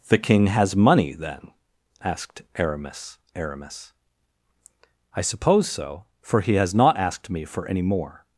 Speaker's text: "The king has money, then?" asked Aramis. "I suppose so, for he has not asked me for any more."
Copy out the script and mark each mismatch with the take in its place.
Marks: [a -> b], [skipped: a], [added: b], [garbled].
"The king has money, then?" asked Aramis. [added: Aramis] "I suppose so, for he has not asked me for any more."